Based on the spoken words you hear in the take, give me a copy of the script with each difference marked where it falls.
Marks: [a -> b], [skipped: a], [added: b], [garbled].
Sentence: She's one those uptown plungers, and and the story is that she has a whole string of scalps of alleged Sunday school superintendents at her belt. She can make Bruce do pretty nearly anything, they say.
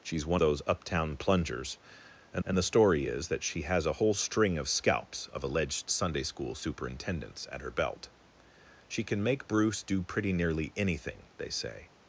She's one those uptown plungers, and and the story is that she has a whole string of scalps of alleged Sunday school superintendents at her belt. She can make Bruce do pretty nearly anything, they say.